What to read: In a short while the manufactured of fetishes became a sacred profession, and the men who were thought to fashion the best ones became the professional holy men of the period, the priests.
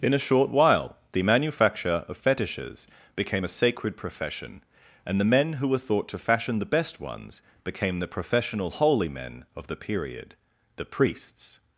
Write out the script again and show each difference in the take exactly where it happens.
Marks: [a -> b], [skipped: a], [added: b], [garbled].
In a short while the [manufactured -> manufacture] of fetishes became a sacred profession, and the men who were thought to fashion the best ones became the professional holy men of the period, the priests.